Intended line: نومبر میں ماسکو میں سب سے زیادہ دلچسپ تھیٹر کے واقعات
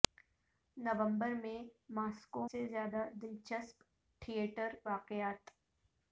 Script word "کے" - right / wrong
wrong